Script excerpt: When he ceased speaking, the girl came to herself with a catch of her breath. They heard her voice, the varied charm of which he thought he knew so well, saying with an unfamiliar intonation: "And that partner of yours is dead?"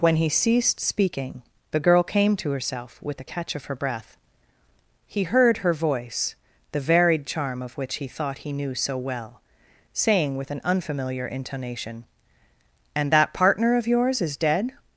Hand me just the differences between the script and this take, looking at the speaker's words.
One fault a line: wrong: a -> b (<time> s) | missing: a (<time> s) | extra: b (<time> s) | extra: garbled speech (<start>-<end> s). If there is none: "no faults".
wrong: They -> He (5.1 s)